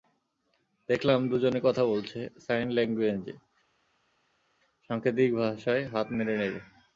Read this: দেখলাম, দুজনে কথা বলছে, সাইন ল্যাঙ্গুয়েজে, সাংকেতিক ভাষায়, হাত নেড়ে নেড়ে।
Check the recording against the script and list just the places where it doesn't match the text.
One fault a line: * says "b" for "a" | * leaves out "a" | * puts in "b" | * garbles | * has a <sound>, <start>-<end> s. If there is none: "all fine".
all fine